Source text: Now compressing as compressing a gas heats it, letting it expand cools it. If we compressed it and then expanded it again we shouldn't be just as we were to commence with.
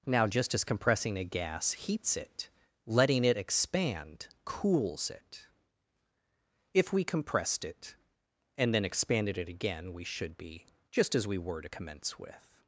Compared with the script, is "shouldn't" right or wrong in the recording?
wrong